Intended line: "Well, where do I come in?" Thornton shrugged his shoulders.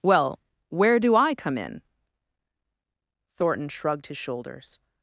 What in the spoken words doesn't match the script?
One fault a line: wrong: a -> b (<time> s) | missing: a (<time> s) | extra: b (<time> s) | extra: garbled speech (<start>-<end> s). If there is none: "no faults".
no faults